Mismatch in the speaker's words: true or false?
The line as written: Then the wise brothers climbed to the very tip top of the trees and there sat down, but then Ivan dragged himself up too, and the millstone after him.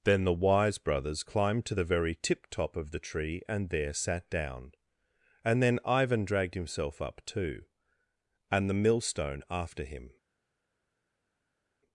true